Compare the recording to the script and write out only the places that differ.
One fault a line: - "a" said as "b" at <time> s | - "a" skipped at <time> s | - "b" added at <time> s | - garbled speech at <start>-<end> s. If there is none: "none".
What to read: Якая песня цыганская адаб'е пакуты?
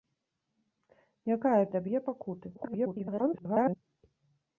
- "песня цыганская" skipped at 1.6 s
- garbled speech at 2.5-3.8 s